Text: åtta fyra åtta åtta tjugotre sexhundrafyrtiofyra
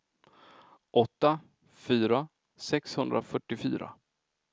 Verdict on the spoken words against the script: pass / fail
fail